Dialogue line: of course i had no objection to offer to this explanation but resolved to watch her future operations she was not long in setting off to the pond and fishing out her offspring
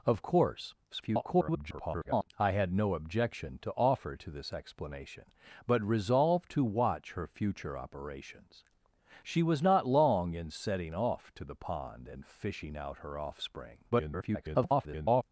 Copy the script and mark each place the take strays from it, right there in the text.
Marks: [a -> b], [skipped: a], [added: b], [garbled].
of course [garbled] i had no objection to offer to this explanation but resolved to watch her future operations she was not long in setting off to the pond and fishing out her offspring [garbled]